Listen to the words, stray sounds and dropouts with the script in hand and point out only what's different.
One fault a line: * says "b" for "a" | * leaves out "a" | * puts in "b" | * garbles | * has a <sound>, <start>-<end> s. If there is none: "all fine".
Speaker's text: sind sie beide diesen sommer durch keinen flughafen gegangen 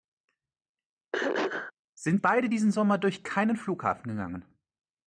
* has a throat clearing, 1.1-1.7 s
* leaves out "sie"